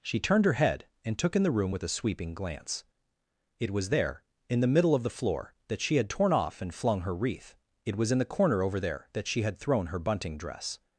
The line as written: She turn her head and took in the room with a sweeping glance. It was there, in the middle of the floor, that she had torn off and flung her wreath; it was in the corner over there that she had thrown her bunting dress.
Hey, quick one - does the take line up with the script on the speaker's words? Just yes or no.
no